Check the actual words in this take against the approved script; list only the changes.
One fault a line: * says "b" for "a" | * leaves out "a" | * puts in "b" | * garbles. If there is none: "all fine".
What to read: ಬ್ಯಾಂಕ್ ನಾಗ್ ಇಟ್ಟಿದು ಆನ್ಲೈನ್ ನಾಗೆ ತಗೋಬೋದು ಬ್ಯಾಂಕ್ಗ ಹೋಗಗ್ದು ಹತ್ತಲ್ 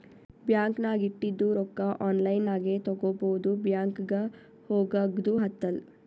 * puts in "ರೊಕ್ಕಾ"